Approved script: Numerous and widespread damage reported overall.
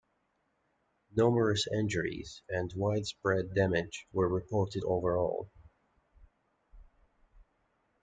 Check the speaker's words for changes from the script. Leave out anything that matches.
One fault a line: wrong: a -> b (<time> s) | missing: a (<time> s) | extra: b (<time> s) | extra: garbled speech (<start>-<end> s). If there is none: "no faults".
extra: injuries (1.7 s)
extra: were (4.1 s)